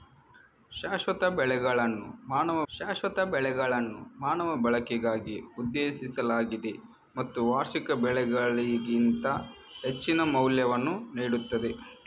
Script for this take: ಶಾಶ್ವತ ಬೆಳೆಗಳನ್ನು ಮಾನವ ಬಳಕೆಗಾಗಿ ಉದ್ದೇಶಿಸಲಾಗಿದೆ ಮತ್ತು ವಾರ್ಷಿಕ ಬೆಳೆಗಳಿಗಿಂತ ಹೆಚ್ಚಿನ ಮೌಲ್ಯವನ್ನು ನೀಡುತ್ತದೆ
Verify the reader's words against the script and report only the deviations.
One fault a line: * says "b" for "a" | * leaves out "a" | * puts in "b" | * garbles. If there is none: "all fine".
* puts in "ಶಾಶ್ವತ ಬೆಳೆಗಳನ್ನು ಮಾನವ"